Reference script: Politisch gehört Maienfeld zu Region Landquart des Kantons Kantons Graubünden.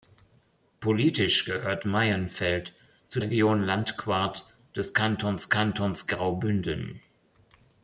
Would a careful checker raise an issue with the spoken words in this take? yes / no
no